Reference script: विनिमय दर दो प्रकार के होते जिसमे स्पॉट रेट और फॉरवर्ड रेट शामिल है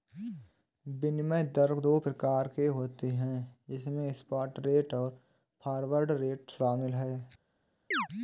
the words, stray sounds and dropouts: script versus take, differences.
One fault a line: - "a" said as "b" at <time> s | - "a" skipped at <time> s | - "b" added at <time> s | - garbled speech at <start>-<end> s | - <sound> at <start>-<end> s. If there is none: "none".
- "है" added at 3.1 s
- chirp at 7.9-8.1 s